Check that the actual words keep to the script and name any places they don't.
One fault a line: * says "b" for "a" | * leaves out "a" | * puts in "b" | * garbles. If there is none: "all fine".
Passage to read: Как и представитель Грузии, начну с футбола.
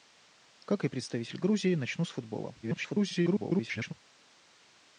* garbles